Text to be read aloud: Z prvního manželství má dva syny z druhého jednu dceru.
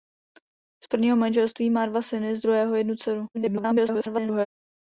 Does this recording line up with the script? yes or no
no